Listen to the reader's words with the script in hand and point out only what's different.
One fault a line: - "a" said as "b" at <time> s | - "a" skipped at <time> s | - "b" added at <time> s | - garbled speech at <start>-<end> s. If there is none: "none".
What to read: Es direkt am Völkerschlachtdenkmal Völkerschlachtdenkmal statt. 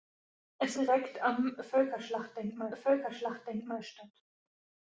none